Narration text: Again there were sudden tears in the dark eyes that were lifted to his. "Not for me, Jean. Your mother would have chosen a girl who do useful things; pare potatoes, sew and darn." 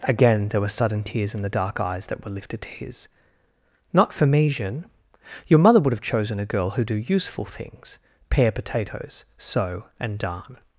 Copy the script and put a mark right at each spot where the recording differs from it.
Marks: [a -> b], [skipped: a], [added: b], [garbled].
Again there were sudden tears in the dark eyes that were lifted to his. "Not for me, Jean. Your mother would have chosen a girl who do useful things; pare potatoes, sew and darn."